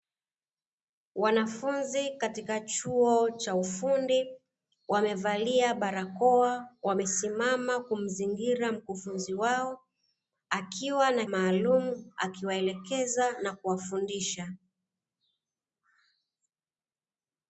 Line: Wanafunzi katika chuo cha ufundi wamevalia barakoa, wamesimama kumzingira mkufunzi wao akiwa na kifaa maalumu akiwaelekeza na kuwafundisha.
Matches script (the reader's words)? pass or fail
fail